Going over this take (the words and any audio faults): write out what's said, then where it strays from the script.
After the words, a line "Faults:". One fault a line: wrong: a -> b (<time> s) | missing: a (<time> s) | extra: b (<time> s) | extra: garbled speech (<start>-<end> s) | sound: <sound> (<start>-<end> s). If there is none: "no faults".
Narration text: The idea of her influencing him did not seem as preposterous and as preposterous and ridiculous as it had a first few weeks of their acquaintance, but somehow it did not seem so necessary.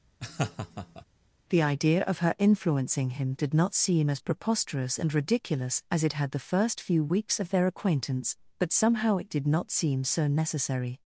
The idea of her influencing him did not seem as preposterous and ridiculous as it had the first few weeks of their acquaintance, but somehow it did not seem so necessary.
Faults:
sound: laugh (0.2-1.0 s)
missing: as preposterous and (5.1 s)
wrong: a -> the (6.3 s)